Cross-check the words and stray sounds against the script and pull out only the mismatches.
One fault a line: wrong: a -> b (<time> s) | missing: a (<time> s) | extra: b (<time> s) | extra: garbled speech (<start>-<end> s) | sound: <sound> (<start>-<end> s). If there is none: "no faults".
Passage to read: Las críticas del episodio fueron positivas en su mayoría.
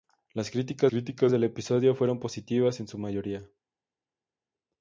extra: críticas (0.9 s)